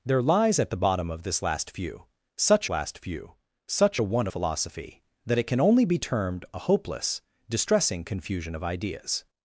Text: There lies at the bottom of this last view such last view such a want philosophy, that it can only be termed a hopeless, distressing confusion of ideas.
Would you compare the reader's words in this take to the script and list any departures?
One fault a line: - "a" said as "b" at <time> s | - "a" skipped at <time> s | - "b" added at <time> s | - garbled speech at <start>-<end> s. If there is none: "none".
none